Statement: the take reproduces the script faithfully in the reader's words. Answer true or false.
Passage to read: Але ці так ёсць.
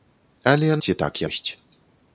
true